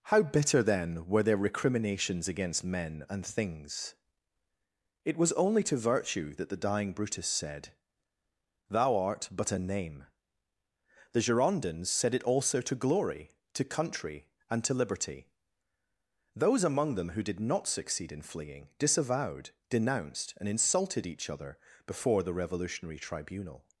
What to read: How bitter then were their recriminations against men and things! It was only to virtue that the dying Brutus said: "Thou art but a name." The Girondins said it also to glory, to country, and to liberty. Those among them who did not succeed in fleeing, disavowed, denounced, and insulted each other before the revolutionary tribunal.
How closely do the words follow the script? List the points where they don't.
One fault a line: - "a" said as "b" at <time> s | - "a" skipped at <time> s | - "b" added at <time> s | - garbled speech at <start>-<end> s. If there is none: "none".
none